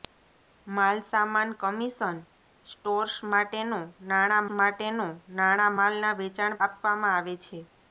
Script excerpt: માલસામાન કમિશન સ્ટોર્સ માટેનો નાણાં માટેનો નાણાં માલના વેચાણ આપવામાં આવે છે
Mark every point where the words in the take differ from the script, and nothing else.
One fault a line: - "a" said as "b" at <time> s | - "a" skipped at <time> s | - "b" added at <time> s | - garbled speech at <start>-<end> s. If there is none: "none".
none